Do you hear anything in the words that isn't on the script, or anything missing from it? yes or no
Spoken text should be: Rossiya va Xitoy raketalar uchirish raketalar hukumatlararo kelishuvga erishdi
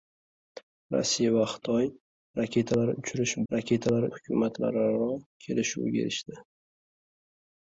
no